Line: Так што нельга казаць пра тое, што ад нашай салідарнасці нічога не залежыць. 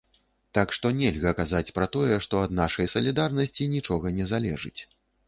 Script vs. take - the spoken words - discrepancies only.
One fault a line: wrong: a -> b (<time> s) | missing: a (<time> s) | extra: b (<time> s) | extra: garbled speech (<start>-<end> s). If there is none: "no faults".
no faults